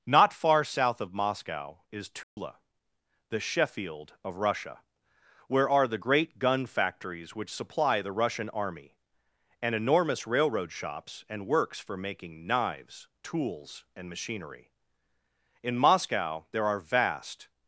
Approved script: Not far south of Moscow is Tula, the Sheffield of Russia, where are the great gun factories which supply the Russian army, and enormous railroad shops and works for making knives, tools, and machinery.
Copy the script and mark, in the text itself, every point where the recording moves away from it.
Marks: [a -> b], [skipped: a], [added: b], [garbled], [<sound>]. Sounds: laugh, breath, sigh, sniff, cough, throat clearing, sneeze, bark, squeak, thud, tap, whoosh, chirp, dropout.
Not far south of Moscow is Tula, [dropout] the Sheffield of Russia, where are the great gun factories which supply the Russian army, and enormous railroad shops and works for making knives, tools, and machinery. [added: In Moscow there are vast]